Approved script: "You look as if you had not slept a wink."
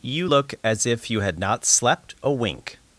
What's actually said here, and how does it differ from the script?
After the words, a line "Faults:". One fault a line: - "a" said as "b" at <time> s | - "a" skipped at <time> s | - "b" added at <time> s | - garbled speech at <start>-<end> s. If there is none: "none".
"You look as if you had not slept a wink."
Faults:
none